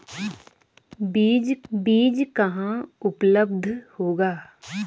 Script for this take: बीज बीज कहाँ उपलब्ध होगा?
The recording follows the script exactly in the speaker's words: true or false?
true